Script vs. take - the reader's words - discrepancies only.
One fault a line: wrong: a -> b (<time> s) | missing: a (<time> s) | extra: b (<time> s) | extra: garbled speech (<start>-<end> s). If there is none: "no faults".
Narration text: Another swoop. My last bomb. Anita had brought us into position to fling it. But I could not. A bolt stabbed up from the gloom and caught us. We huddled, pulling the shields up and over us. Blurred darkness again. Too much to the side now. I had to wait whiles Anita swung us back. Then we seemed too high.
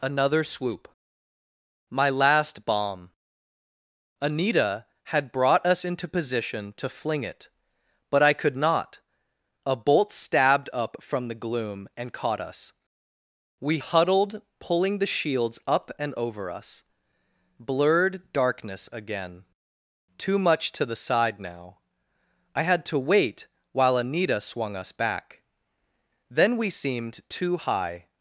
wrong: whiles -> while (23.7 s)